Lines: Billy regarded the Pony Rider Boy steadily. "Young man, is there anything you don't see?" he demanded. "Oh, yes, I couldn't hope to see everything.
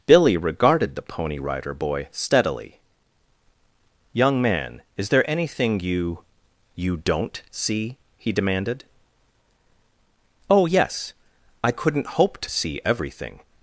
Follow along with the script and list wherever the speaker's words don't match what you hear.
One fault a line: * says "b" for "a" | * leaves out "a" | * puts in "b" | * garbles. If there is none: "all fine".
* puts in "you"